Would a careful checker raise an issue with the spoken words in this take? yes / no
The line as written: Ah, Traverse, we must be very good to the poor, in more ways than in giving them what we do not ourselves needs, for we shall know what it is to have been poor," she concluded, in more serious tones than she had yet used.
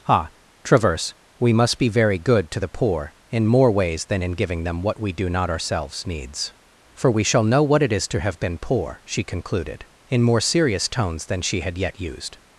no